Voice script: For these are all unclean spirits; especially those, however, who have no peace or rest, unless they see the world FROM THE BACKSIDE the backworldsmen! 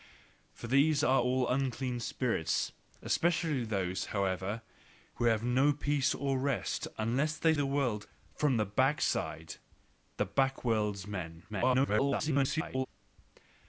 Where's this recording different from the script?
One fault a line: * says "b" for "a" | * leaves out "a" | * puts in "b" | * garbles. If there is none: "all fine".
* leaves out "see"
* garbles